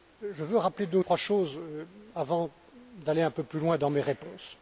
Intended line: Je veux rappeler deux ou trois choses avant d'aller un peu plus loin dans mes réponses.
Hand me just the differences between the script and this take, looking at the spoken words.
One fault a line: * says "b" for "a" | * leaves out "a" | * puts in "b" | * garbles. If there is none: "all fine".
all fine